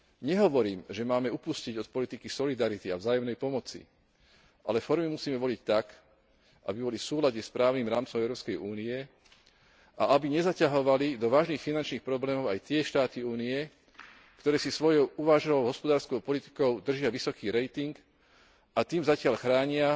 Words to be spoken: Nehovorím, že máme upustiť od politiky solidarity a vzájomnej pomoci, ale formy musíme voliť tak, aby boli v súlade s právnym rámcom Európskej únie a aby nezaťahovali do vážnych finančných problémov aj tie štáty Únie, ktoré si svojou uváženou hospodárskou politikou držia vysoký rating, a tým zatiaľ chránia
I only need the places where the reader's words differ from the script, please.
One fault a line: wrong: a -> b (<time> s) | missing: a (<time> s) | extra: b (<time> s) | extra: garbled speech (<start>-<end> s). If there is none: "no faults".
no faults